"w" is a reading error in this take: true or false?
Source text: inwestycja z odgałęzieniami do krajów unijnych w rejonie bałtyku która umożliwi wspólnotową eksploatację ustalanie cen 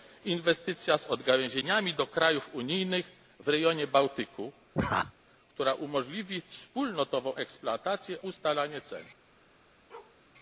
false